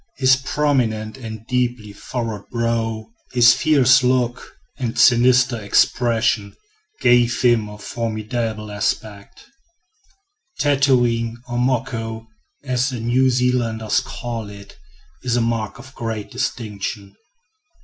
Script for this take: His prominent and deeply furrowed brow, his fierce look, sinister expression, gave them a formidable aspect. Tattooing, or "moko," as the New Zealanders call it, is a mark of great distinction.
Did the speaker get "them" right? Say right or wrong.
wrong